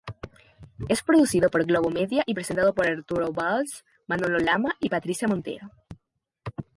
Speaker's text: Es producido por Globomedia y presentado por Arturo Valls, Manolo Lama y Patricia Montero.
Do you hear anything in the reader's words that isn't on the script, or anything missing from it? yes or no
no